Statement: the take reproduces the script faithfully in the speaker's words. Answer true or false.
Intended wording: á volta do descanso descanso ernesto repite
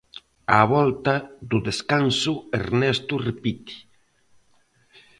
false